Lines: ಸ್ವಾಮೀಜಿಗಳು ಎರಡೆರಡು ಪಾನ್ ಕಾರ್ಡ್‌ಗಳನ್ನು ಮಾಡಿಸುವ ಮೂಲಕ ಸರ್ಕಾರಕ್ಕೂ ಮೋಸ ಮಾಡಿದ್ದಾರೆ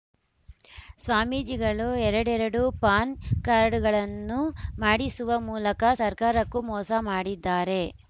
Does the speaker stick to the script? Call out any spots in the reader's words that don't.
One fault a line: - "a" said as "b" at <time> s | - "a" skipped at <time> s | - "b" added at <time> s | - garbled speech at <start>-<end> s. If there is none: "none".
none